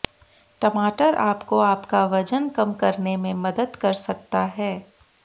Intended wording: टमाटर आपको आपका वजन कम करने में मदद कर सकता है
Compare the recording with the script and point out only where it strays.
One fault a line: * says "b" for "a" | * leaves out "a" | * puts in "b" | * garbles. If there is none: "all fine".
all fine